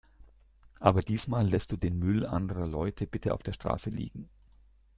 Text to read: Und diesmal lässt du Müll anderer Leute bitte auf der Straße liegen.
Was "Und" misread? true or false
true